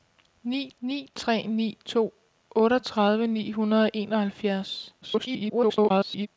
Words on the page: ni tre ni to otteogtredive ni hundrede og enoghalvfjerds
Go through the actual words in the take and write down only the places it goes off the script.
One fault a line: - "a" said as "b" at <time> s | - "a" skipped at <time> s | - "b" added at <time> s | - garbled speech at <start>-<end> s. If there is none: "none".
- "ni" added at 0.8 s
- garbled speech at 5.0-6.3 s